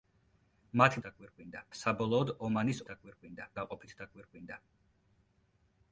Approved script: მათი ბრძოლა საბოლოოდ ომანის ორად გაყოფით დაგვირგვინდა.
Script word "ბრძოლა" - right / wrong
wrong